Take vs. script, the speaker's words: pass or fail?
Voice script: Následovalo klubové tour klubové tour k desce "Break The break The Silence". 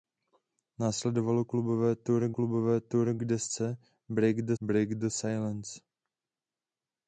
pass